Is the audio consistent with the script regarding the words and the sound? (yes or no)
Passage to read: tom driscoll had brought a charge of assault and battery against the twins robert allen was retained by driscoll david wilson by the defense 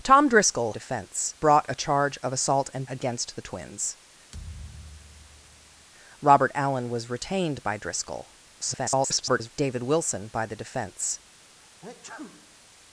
no